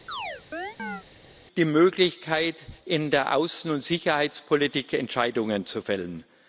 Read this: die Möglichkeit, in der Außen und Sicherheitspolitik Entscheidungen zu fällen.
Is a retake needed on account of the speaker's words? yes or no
no